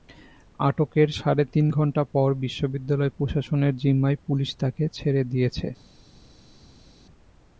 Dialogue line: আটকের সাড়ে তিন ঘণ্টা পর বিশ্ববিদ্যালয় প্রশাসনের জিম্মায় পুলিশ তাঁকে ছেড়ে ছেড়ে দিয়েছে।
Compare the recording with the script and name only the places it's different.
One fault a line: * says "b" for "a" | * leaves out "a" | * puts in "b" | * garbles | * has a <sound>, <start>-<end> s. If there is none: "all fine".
* leaves out "ছেড়ে"